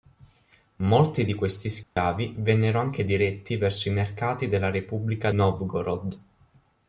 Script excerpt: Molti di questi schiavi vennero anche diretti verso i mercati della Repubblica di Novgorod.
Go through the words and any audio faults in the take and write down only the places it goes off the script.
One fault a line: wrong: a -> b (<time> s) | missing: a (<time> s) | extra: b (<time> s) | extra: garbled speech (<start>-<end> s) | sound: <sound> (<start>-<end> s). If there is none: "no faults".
sound: dropout (1.8-2.0 s)
missing: di (5.3 s)